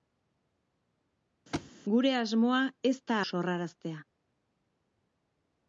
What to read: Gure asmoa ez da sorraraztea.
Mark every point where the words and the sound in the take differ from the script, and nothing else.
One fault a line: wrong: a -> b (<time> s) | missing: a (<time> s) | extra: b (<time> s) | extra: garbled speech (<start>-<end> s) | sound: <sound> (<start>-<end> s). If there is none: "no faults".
sound: thud (1.5-1.7 s)